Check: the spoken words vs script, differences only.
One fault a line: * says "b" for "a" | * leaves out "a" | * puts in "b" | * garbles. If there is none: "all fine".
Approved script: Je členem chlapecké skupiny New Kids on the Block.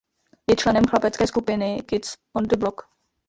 * leaves out "New"